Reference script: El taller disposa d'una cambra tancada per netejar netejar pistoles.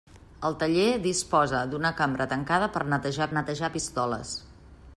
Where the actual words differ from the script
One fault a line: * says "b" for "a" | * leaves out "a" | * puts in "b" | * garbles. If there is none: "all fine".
all fine